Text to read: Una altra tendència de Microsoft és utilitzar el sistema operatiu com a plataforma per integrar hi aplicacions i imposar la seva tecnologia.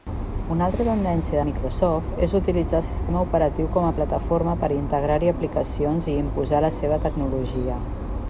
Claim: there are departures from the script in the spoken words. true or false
true